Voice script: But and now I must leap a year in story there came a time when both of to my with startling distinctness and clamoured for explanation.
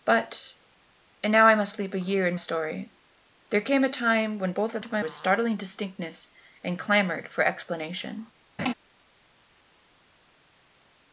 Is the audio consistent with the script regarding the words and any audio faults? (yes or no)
no